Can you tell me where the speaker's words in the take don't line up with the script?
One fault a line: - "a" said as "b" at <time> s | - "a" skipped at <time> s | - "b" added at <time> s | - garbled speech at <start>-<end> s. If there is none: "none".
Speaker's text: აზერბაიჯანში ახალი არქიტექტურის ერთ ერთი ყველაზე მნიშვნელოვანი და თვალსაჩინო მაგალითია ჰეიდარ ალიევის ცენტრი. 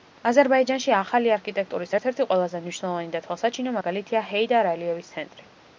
none